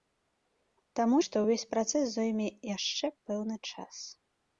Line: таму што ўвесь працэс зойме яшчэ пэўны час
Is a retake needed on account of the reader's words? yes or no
no